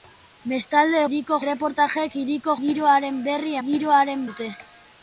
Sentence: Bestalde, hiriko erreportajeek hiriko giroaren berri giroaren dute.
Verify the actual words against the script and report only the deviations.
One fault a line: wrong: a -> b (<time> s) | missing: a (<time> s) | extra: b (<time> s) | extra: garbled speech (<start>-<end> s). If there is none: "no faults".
no faults